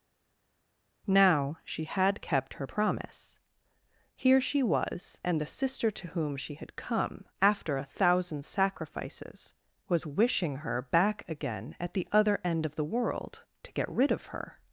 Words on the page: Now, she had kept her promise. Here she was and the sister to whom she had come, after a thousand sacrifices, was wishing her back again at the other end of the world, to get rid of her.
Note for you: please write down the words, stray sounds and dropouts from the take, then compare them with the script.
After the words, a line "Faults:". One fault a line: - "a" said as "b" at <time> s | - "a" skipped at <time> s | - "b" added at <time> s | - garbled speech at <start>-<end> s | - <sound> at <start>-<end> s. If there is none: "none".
Now, she had kept her promise. Here she was and the sister to whom she had come, after a thousand sacrifices, was wishing her back again at the other end of the world, to get rid of her.
Faults:
none